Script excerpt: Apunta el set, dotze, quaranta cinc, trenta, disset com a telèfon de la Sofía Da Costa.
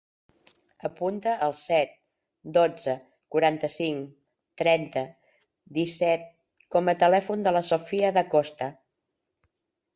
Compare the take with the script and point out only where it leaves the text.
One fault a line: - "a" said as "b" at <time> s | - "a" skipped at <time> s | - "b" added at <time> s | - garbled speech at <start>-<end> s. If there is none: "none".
none